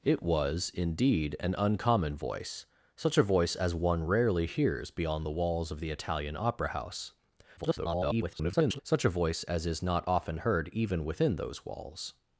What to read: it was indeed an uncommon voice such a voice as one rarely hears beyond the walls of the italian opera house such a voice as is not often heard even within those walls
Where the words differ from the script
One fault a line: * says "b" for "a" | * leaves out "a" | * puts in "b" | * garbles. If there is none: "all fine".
* garbles